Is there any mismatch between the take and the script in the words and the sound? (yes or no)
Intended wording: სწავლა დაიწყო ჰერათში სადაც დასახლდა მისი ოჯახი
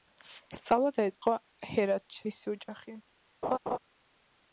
yes